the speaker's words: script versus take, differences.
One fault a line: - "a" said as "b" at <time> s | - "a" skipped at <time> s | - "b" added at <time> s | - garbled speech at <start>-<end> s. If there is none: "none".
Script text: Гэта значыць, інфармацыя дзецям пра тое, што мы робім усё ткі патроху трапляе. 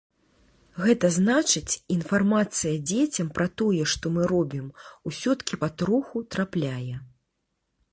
none